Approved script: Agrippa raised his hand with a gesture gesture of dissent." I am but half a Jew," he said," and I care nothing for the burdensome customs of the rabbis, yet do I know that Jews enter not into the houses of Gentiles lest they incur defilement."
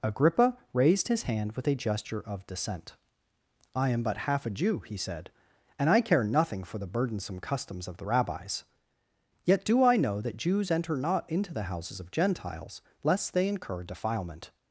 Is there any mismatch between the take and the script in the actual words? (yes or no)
yes